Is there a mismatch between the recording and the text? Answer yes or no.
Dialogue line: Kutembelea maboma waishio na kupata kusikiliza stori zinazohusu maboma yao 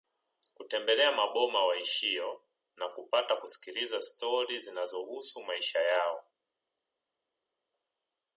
yes